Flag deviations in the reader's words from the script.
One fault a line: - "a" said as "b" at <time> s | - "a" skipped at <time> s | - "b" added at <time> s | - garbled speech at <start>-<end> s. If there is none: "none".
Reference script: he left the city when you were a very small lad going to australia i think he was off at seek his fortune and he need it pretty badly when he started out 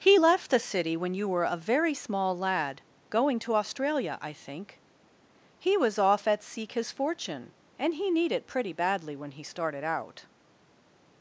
none